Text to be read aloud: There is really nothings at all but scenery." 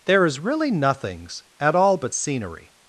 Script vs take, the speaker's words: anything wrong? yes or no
no